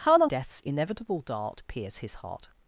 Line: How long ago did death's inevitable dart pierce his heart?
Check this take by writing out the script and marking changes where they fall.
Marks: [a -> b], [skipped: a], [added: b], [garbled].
How long [skipped: ago did] death's inevitable dart pierce his heart?